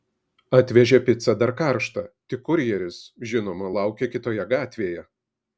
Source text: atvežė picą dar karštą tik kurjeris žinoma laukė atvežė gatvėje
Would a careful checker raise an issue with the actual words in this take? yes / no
yes